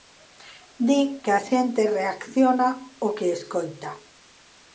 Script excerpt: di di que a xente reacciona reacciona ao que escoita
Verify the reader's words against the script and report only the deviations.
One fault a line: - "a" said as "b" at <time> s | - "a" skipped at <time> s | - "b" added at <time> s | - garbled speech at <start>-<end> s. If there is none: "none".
- "di" skipped at 1.0 s
- "reacciona" skipped at 2.7 s